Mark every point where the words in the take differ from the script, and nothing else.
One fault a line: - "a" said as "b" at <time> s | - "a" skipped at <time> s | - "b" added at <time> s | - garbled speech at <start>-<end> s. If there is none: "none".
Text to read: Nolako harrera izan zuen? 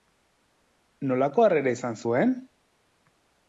none